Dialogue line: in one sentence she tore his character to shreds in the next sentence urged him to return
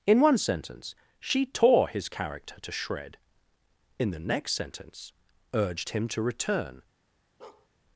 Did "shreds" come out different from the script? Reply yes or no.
yes